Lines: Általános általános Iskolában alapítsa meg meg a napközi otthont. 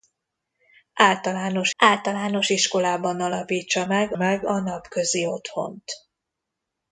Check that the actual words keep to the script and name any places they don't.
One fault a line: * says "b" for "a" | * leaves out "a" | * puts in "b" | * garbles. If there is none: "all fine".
all fine